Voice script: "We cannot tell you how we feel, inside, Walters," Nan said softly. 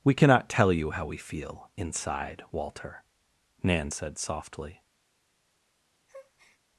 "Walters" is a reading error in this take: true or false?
true